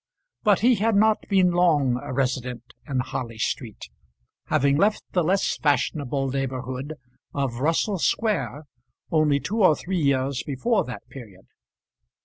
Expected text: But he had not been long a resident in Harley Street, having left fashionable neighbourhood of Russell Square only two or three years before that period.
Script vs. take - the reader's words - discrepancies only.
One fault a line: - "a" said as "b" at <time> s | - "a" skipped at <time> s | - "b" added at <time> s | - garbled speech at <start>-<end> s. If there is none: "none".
- "the less" added at 5.1 s